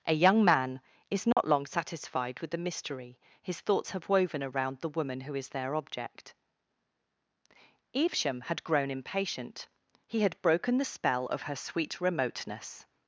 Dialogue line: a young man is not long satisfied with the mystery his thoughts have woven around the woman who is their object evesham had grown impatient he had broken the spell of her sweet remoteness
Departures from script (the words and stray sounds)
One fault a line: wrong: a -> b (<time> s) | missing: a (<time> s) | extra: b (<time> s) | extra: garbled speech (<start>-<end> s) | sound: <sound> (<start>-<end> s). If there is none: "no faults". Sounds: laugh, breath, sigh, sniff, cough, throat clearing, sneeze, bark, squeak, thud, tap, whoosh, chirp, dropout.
sound: dropout (1.3-1.4 s)